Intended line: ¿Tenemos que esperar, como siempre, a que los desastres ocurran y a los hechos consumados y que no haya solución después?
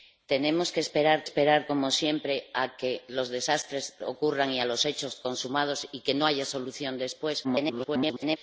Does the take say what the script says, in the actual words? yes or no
no